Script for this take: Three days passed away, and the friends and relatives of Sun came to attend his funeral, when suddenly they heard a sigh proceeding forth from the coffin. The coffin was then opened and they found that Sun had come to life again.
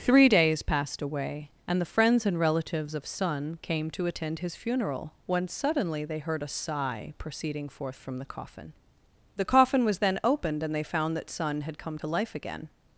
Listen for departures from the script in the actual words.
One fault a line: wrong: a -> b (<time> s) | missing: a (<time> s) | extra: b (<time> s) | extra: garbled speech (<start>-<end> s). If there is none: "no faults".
no faults